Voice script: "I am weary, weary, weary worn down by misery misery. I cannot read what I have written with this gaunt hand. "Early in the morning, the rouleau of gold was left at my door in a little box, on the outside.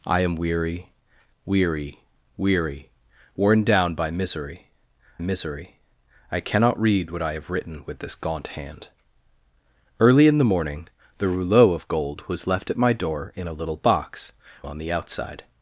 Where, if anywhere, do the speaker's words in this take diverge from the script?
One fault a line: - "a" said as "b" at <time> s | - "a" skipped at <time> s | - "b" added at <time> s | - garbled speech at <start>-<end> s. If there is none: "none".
none